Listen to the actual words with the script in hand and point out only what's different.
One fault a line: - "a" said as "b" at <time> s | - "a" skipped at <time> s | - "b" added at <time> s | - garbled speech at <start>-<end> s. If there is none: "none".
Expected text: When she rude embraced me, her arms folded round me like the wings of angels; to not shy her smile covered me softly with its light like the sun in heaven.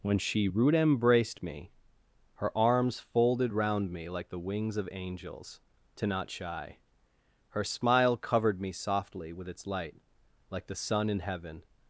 none